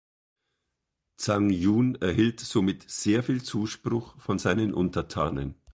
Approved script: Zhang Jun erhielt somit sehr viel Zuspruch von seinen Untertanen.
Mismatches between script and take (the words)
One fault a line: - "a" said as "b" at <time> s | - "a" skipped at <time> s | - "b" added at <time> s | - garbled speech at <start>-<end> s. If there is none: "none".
none